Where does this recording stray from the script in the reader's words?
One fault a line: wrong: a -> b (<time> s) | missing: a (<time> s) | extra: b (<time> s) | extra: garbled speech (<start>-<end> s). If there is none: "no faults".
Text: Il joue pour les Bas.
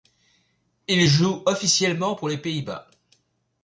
extra: officiellement (1.5 s)
extra: Pays (2.4 s)